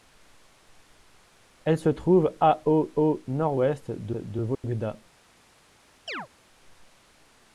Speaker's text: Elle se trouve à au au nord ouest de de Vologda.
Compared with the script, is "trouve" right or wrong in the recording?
right